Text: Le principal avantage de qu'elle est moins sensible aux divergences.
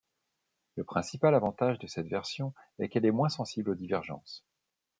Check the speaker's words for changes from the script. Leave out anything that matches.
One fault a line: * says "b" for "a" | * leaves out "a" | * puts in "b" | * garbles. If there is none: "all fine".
* puts in "cette version est"